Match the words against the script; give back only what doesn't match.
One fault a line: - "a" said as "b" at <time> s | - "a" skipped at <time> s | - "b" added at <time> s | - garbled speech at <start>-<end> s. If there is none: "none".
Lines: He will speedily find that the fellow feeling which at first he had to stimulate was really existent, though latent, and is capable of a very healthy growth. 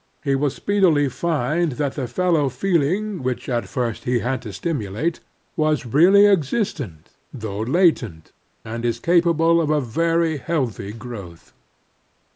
none